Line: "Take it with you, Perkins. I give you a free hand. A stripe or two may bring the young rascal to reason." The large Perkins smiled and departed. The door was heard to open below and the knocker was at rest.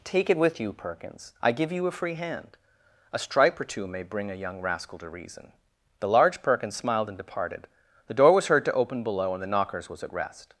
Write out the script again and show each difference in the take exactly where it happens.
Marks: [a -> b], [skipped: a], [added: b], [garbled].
"Take it with you, Perkins. I give you a free hand. A stripe or two may bring [the -> a] young rascal to reason." The large Perkins smiled and departed. The door was heard to open below and the [knocker -> knockers] was at rest.